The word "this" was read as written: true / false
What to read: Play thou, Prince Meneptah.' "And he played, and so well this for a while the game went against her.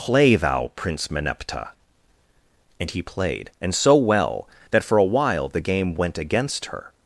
false